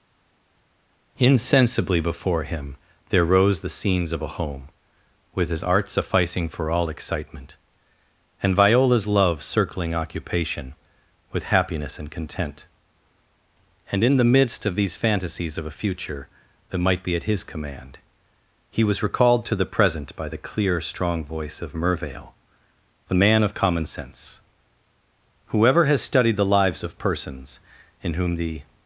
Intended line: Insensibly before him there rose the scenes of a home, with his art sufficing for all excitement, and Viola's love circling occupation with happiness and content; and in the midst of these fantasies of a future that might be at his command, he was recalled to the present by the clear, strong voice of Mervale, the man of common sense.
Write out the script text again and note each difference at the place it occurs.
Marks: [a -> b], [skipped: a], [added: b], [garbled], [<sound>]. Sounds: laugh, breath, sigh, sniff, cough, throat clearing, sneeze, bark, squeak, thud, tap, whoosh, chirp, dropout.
Insensibly before him there rose the scenes of a home, with his art sufficing for all excitement, and Viola's love circling occupation with happiness and content; and in the midst of these fantasies of a future that might be at his command, he was recalled to the present by the clear, strong voice of Mervale, the man of common sense. [added: Whoever has studied the lives of persons in whom the]